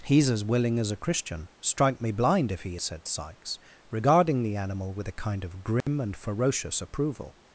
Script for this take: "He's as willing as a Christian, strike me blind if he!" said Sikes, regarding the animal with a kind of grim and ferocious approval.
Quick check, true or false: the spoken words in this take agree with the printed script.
true